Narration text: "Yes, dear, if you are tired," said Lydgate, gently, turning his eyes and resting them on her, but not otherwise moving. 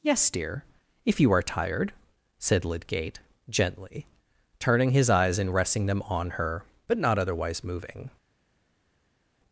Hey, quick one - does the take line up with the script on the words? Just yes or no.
yes